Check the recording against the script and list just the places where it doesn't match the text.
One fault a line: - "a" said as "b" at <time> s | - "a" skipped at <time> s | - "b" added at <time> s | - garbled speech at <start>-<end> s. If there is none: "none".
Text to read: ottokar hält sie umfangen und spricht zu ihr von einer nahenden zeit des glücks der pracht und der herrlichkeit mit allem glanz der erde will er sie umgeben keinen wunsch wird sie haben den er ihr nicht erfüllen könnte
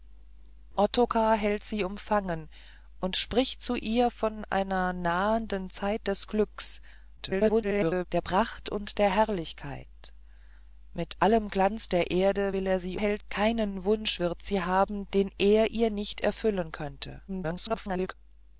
- garbled speech at 7.2-8.1 s
- "umgeben" said as "hält" at 13.0 s
- garbled speech at 17.3-18.1 s